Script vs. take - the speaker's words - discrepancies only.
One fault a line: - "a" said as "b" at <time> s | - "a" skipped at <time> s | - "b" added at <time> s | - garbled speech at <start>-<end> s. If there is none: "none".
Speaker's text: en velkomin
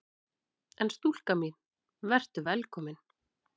- "stúlka mín vertu" added at 0.9 s